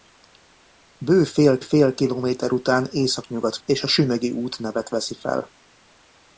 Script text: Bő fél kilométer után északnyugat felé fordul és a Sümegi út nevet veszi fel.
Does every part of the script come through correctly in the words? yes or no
no